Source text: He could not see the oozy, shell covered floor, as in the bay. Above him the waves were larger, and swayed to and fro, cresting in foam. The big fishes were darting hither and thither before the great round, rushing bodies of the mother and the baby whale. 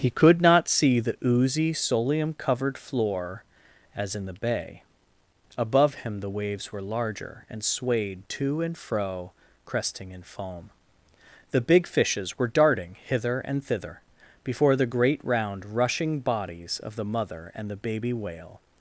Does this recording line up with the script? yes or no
no